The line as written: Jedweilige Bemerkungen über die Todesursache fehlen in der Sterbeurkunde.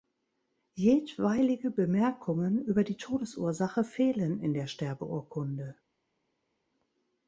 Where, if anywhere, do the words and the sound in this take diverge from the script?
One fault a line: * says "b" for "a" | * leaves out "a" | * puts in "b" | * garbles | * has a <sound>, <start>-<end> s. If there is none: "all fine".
all fine